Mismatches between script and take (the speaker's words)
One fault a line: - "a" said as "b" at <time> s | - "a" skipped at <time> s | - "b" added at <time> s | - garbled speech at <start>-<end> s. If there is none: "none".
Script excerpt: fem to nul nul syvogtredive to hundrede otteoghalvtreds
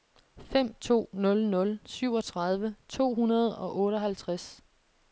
- "og" added at 3.6 s